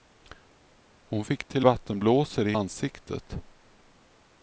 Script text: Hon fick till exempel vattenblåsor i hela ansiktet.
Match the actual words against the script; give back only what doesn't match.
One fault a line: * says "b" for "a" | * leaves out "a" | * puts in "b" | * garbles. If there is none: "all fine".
* leaves out "exempel"
* leaves out "hela"